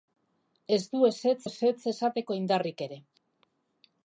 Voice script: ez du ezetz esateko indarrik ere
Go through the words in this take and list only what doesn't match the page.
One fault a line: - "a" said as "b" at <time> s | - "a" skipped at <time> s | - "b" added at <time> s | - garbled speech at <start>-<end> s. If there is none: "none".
- "ezetz" added at 1.5 s